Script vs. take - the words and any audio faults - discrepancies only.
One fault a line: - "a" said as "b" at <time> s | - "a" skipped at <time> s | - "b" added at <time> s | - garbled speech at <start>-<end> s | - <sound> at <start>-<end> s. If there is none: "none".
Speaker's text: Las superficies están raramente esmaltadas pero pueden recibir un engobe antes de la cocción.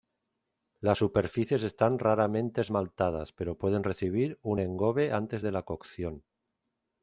none